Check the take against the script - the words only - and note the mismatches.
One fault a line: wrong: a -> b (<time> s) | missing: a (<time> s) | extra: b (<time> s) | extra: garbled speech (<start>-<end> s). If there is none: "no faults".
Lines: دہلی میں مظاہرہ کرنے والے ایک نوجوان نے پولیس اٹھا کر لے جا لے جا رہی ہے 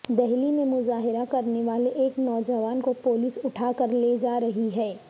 wrong: نے -> کو (2.8 s)
missing: لے جا (4.4 s)